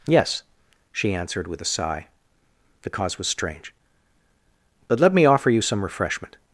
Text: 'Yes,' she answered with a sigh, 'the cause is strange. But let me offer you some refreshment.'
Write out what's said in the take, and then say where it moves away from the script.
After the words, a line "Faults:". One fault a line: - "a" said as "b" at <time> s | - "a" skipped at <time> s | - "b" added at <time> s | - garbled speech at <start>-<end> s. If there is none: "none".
'Yes,' she answered with a sigh, 'the cause was strange. But let me offer you some refreshment.'
Faults:
- "is" said as "was" at 3.2 s